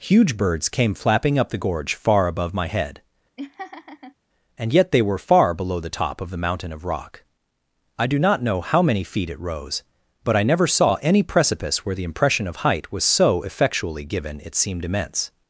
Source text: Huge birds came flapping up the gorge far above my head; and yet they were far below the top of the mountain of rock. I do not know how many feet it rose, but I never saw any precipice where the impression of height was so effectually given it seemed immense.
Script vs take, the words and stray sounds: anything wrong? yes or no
yes